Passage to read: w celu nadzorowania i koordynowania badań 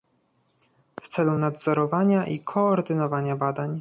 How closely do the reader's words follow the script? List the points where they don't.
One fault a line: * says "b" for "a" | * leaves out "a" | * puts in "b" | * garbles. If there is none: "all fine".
all fine